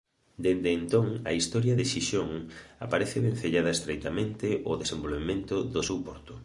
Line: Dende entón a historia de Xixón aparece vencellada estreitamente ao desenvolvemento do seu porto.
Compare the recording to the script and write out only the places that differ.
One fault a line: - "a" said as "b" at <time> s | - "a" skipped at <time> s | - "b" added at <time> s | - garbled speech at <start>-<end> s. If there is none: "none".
none